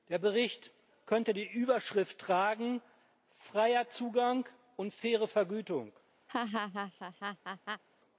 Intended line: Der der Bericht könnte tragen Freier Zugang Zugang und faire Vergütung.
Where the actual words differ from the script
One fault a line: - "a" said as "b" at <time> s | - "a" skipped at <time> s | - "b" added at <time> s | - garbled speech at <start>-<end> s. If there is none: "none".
- "der" skipped at 0.2 s
- "die Überschrift" added at 1.3 s
- "Zugang" skipped at 4.5 s